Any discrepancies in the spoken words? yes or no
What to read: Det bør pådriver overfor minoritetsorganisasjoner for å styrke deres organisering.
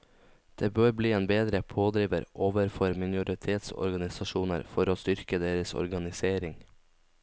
yes